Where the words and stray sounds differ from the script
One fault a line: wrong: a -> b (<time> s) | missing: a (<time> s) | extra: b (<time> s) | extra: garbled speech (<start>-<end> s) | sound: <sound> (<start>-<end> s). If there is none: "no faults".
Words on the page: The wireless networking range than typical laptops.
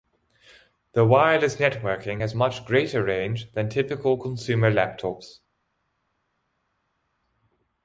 extra: has much greater (2.2 s)
extra: consumer (4.2 s)